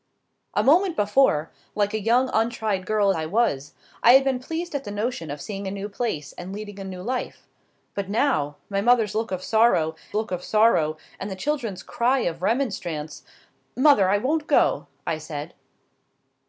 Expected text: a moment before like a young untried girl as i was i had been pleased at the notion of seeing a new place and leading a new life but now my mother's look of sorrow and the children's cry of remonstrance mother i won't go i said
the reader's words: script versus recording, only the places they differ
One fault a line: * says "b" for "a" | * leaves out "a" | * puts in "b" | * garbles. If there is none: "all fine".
* leaves out "as"
* puts in "look of sorrow"